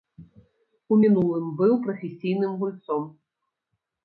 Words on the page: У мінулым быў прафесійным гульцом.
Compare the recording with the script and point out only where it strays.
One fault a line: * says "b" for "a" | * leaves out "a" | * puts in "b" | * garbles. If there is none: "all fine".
all fine